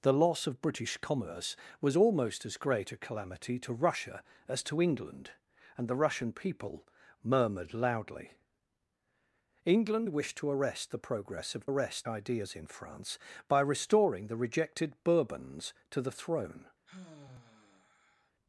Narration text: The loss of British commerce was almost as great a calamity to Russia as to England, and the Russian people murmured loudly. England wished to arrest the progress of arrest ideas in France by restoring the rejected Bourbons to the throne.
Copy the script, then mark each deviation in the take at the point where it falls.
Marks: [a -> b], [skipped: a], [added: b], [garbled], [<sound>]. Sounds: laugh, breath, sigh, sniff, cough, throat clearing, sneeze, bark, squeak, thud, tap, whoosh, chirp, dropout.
The loss of British commerce was almost as great a calamity to Russia as to England, and the Russian people murmured loudly. England wished to arrest the progress of arrest ideas in France by restoring the rejected Bourbons to the throne. [sigh]